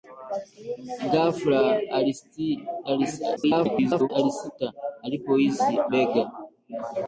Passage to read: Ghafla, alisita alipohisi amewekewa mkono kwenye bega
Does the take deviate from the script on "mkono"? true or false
true